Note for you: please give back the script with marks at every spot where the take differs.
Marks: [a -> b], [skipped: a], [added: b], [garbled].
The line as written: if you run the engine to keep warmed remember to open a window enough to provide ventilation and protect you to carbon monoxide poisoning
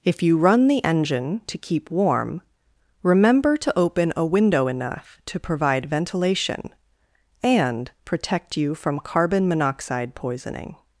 if you run the engine to keep [warmed -> warm] remember to open a window enough to provide ventilation and protect you [to -> from] carbon monoxide poisoning